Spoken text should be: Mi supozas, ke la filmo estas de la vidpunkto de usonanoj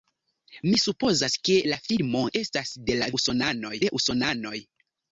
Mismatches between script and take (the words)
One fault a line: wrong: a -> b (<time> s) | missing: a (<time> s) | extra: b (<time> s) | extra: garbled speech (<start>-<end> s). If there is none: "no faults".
wrong: vidpunkto -> usonanoj (3.2 s)